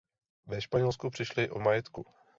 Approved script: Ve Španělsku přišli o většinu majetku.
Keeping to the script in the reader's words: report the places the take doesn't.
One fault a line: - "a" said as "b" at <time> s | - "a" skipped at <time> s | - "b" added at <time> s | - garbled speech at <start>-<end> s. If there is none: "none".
- "většinu" skipped at 1.6 s